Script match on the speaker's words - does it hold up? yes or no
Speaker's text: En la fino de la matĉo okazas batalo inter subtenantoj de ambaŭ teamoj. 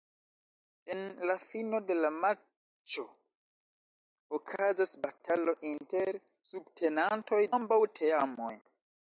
no